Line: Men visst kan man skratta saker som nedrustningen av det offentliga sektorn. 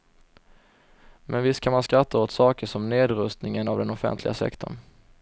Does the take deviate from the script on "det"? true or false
true